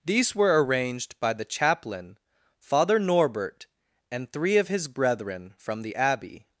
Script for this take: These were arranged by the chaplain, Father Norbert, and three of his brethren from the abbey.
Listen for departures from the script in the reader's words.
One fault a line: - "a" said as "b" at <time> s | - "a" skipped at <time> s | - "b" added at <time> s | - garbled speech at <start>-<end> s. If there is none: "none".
none